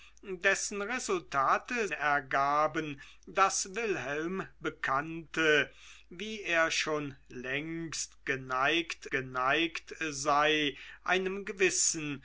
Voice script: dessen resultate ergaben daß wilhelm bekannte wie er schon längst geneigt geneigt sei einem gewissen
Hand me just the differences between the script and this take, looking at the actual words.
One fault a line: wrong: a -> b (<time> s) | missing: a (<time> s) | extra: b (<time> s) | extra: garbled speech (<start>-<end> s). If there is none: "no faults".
no faults